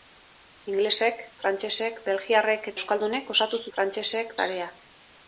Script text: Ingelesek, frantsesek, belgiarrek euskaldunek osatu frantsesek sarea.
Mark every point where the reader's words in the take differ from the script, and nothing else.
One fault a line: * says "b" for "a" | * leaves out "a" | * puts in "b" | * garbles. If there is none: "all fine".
all fine